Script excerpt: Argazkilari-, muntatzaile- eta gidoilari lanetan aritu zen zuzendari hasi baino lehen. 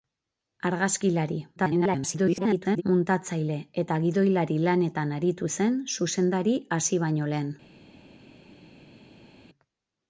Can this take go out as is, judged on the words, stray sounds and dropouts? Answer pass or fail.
fail